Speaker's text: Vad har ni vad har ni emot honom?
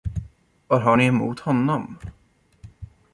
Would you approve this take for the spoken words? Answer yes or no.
no